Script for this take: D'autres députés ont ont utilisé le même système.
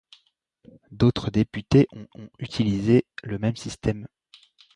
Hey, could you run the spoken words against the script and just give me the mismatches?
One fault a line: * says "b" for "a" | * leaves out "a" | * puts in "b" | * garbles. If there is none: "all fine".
all fine